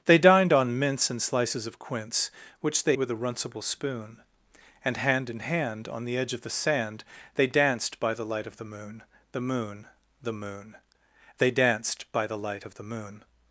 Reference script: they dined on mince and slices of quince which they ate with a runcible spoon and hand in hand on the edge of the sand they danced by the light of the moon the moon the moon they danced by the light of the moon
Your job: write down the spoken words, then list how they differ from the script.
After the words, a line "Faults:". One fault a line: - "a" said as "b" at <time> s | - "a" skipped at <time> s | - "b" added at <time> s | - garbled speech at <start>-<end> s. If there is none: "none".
they dined on mince and slices of quince which they with a runcible spoon and hand in hand on the edge of the sand they danced by the light of the moon the moon the moon they danced by the light of the moon
Faults:
- "ate" skipped at 3.0 s